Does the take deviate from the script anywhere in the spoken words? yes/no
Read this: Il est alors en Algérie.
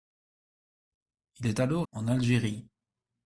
no